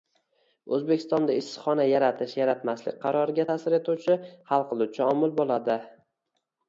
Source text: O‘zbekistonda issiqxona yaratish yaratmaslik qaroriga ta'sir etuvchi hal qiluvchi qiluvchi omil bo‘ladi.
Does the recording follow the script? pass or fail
fail